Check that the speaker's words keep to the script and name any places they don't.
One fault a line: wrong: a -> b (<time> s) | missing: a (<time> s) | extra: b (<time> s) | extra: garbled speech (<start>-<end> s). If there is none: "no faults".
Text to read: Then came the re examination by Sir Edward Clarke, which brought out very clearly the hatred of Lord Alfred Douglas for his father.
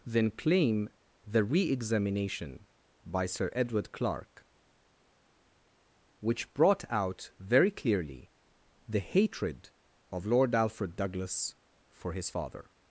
wrong: came -> claim (0.3 s)